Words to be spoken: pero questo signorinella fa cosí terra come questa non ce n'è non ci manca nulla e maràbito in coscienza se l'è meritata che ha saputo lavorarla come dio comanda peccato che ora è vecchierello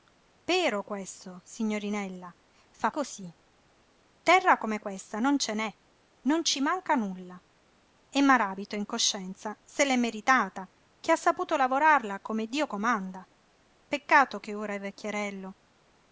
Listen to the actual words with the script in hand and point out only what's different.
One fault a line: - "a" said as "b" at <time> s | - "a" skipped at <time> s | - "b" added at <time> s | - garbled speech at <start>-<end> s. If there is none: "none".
none